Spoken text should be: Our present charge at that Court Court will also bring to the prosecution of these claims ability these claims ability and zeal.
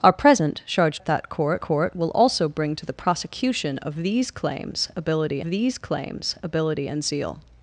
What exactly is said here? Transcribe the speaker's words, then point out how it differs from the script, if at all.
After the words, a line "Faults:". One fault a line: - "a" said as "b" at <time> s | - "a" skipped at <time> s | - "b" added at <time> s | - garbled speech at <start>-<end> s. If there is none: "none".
Our present charge at that Court Court will also bring to the prosecution of these claims ability these claims ability and zeal.
Faults:
none